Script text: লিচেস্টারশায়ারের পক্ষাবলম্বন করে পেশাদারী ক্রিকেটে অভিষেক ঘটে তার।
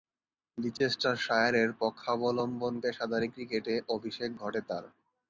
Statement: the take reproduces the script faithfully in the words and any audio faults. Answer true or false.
false